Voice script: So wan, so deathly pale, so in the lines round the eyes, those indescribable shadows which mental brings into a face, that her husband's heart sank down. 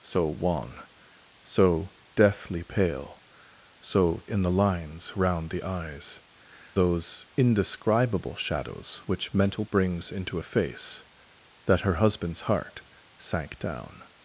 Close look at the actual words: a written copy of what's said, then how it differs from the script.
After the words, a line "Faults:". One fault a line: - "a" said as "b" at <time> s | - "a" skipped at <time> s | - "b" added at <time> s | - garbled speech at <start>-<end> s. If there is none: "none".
So wan, so deathly pale, so in the lines round the eyes, those indescribable shadows which mental brings into a face, that her husband's heart sank down.
Faults:
none